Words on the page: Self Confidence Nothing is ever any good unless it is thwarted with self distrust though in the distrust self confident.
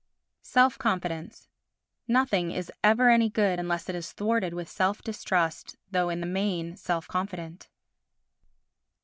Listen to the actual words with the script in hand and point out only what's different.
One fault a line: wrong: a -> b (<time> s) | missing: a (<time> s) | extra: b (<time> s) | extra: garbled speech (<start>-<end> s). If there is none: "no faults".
wrong: distrust -> main (6.3 s)